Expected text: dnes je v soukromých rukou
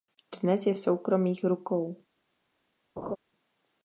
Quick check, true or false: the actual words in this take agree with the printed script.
true